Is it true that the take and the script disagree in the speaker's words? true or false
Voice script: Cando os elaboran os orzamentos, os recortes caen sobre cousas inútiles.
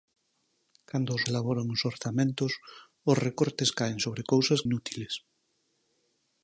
false